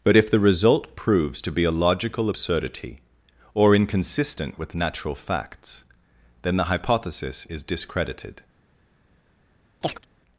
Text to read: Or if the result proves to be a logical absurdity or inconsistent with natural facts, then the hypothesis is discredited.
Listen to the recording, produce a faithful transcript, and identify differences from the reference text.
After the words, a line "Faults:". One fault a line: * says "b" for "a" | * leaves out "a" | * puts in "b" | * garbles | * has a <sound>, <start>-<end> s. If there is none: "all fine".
But if the result proves to be a logical absurdity or inconsistent with natural facts, then the hypothesis is discredited.
Faults:
* says "But" for "Or"
* has a chirp, 9.8-10.1 s